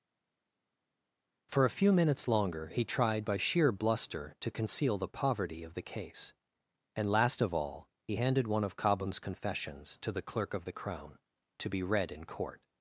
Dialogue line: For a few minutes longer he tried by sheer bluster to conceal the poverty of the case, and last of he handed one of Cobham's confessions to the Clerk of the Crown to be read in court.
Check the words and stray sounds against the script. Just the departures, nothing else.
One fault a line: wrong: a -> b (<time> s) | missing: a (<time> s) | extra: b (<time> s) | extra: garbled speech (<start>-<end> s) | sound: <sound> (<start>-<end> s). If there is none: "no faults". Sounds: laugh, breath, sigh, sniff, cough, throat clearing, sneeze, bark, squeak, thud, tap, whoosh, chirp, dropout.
extra: all (7.5 s)